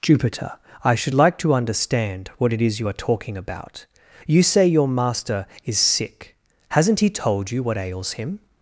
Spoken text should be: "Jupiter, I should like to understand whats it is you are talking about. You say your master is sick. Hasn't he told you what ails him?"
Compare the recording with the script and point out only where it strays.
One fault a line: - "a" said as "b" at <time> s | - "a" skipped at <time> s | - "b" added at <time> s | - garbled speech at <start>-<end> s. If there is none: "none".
- "whats" said as "what" at 2.4 s